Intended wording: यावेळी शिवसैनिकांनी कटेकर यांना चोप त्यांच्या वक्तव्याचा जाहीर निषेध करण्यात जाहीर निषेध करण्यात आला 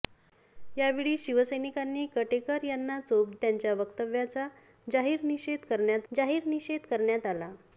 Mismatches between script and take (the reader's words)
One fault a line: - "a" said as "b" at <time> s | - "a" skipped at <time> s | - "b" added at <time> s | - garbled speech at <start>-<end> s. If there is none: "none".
none